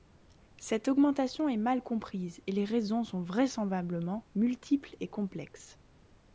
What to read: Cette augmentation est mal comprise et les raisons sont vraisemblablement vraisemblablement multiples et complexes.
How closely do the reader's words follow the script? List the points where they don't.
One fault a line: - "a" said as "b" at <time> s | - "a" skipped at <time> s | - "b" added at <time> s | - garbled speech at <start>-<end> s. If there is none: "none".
- "vraisemblablement" skipped at 4.3 s